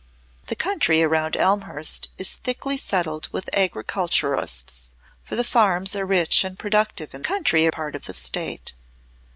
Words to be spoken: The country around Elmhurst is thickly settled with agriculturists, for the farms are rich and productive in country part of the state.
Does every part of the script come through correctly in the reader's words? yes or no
yes